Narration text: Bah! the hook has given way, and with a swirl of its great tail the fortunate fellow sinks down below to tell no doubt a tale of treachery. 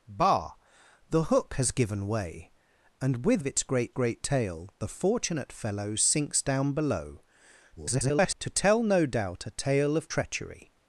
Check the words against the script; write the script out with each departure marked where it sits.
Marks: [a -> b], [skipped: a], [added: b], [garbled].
Bah! the hook has given way, and with [skipped: a swirl] of its great [added: great] tail the fortunate fellow sinks down below [garbled] to tell no doubt a tale of treachery.